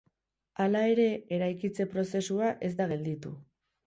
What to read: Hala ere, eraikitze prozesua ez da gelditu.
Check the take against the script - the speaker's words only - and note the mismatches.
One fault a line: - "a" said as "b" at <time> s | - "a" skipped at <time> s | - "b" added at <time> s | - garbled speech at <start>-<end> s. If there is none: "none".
none